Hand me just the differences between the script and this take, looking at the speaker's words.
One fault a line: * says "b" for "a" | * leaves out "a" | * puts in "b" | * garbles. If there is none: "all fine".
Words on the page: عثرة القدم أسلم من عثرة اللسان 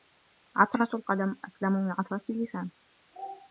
all fine